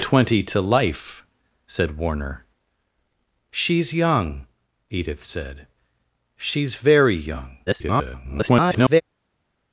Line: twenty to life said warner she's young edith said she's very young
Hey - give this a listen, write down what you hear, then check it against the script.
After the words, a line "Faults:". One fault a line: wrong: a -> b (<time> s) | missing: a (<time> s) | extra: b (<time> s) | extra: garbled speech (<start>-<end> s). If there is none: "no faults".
twenty to life said warner she's young edith said she's very young [garbled]
Faults:
extra: garbled speech (7.7-9.0 s)